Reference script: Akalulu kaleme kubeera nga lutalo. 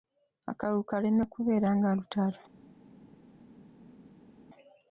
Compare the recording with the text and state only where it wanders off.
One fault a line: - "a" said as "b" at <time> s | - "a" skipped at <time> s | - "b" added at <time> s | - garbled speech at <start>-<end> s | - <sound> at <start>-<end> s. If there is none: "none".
none